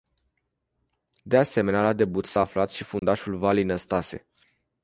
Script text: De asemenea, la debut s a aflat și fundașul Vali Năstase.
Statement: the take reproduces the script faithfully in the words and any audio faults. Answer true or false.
false